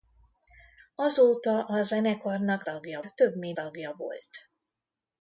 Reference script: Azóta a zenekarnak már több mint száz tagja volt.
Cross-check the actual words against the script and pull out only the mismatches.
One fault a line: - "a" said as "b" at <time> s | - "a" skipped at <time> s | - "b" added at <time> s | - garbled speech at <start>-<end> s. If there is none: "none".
- "már" said as "tagja" at 2.6 s
- "száz" skipped at 3.6 s